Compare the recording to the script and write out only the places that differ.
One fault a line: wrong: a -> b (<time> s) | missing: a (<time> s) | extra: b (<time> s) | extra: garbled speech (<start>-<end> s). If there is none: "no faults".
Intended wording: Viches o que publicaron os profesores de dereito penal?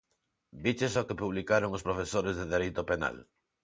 no faults